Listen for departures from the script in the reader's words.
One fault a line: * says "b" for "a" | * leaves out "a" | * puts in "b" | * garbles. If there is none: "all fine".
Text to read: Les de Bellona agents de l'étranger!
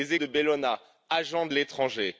all fine